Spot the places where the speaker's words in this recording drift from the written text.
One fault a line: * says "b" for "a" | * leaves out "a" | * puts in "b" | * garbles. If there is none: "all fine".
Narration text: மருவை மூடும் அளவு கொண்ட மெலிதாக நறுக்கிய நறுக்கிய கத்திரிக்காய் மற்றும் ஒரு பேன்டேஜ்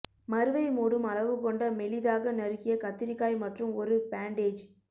* leaves out "நறுக்கிய"